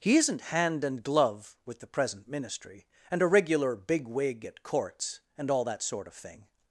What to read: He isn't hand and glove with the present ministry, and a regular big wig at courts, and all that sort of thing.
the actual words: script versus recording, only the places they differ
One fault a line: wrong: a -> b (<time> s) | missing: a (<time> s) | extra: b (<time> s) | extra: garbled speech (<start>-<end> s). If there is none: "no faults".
no faults